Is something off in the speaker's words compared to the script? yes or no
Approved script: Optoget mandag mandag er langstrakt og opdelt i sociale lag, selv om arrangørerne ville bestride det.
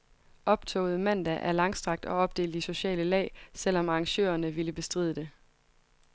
yes